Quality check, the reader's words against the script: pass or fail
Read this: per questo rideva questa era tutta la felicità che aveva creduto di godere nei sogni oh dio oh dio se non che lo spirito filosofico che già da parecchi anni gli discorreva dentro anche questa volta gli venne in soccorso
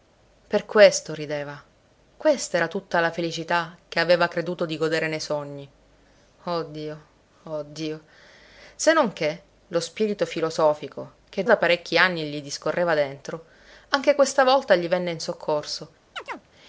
fail